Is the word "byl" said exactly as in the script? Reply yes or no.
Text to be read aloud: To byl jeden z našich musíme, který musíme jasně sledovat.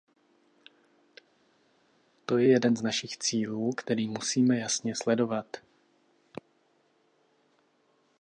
no